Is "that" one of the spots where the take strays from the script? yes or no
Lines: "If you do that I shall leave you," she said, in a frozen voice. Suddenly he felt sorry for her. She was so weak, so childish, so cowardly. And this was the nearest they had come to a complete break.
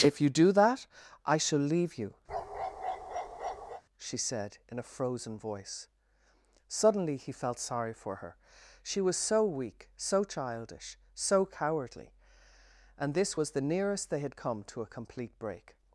no